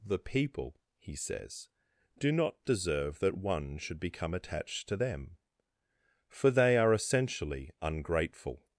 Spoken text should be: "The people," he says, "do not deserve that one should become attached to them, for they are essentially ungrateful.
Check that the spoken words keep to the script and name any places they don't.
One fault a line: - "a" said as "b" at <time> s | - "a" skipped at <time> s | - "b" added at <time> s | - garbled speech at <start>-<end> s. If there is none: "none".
none